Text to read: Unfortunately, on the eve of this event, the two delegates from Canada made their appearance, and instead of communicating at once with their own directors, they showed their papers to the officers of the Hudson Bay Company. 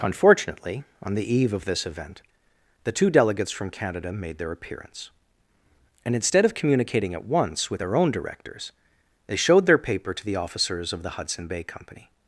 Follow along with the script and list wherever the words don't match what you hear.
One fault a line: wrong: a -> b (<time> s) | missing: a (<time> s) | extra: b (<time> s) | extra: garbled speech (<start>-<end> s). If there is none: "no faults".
wrong: papers -> paper (9.8 s)